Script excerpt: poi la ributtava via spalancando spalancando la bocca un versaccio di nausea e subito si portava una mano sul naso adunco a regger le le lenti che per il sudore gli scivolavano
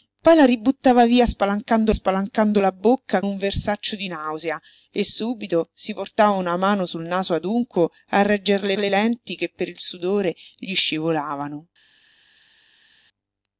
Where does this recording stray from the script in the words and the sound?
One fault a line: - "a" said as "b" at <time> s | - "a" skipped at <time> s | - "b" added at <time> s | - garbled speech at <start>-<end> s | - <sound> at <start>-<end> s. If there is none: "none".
none